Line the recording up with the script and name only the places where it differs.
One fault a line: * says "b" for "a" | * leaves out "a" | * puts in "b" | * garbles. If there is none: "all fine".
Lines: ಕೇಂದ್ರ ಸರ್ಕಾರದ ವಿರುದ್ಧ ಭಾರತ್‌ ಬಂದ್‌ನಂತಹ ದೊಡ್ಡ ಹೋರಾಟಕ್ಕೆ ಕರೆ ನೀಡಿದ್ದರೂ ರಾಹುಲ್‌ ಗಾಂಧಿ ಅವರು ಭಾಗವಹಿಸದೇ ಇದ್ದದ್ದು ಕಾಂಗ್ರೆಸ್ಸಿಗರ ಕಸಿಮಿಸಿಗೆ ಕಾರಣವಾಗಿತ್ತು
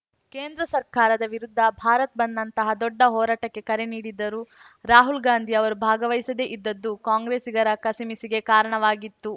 all fine